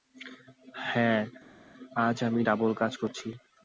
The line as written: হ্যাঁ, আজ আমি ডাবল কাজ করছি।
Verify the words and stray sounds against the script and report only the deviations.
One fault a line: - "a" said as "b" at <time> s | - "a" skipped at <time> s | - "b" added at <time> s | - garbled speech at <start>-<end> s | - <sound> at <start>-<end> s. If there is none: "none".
none